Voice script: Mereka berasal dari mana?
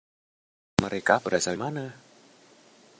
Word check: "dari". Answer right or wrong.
wrong